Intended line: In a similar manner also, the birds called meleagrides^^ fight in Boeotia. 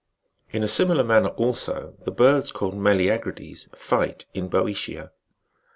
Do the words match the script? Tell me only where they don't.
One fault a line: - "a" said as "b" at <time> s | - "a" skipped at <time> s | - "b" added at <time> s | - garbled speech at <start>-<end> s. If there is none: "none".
none